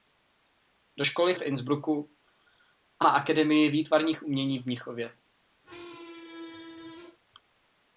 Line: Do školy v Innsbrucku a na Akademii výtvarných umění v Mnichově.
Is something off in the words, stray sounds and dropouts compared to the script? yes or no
yes